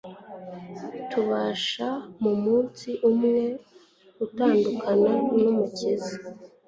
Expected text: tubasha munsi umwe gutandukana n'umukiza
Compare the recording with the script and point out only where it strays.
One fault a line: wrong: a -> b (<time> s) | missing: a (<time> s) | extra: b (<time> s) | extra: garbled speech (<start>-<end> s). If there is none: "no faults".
extra: mu (2.2 s)